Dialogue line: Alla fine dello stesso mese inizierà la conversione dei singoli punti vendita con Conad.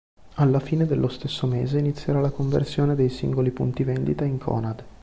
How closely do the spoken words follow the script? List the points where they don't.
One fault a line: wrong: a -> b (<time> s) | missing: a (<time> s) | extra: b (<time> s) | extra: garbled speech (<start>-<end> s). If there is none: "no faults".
wrong: con -> in (4.2 s)